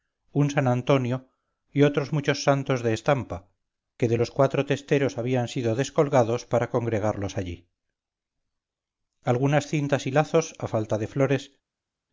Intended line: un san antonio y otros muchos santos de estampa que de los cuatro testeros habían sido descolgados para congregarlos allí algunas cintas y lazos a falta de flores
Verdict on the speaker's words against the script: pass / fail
pass